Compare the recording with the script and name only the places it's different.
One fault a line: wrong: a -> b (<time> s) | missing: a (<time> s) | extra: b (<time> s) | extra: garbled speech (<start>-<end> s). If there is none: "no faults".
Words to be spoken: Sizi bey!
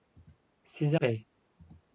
no faults